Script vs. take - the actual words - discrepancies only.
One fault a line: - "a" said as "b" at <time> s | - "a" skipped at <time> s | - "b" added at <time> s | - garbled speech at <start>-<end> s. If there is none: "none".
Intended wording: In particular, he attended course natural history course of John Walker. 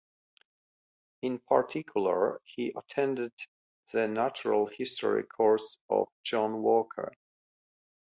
- "course" said as "the" at 3.9 s